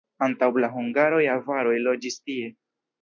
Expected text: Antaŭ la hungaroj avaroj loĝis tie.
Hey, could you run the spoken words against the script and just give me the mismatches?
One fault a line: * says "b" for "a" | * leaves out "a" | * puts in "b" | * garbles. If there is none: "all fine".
all fine